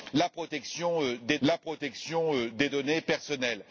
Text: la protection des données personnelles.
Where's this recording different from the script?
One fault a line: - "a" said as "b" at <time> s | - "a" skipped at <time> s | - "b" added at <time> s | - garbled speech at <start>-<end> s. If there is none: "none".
- "la protection des" added at 1.4 s